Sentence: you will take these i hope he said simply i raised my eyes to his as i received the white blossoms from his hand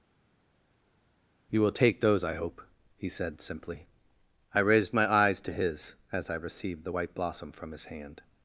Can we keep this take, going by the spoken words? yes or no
no